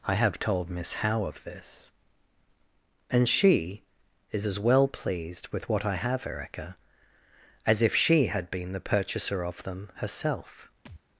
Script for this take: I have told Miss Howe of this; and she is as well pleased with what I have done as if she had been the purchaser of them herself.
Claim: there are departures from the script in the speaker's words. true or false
true